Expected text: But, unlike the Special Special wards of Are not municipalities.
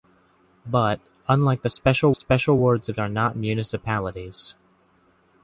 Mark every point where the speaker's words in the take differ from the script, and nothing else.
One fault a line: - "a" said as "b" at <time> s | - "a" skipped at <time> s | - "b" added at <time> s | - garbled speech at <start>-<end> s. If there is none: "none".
none